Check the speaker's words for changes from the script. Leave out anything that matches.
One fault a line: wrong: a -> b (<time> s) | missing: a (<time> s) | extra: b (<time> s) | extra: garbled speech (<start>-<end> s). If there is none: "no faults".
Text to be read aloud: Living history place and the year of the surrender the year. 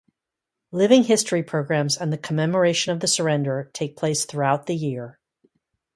wrong: place -> programs (1.4 s)
wrong: year -> commemoration (2.2 s)
extra: take place throughout (3.7 s)